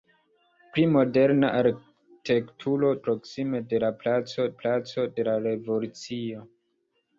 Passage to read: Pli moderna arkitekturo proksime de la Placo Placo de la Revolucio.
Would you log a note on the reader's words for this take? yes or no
no